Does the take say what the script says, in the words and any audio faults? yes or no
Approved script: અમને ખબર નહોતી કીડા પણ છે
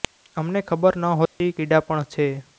no